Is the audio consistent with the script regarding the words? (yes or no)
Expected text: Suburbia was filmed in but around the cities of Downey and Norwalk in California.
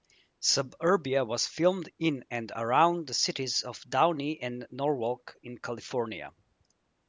no